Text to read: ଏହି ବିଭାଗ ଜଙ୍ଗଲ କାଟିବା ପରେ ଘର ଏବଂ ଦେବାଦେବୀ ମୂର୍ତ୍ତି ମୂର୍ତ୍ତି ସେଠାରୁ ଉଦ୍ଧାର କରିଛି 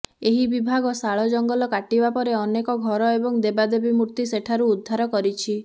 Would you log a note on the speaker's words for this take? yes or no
yes